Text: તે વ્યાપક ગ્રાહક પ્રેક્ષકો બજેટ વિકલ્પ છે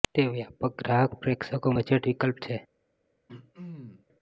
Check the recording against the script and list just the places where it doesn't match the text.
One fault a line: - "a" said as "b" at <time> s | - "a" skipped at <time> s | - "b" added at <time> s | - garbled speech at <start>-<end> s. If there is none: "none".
none